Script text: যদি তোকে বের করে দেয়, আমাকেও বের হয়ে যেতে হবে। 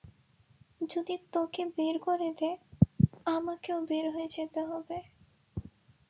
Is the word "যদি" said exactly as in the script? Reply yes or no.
yes